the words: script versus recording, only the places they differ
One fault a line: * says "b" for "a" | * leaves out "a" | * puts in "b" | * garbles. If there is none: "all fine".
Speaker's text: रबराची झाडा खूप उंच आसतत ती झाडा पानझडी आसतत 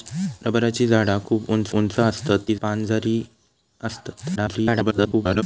* puts in "उंच"
* leaves out "झाडा"
* garbles